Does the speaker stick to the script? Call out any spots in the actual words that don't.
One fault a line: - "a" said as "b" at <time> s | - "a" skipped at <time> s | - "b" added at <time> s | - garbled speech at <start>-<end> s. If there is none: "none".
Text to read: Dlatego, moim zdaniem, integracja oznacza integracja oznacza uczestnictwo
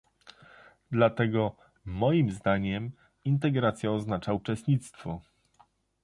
- "integracja oznacza" skipped at 4.3 s